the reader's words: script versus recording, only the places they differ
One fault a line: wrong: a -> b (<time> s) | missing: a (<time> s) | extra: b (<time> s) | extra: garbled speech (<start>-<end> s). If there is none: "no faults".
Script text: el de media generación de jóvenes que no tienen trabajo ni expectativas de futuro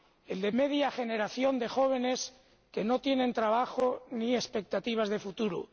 no faults